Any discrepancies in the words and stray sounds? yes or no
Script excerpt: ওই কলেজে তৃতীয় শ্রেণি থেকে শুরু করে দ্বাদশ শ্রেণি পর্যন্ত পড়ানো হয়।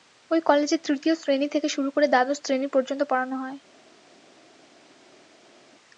no